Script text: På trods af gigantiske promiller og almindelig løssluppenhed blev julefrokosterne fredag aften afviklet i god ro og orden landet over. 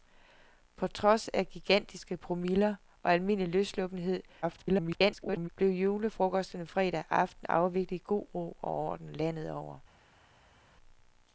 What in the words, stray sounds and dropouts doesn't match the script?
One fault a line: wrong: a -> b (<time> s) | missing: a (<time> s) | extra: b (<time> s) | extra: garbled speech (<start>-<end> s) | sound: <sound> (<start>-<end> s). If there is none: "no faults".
extra: garbled speech (4.4-5.5 s)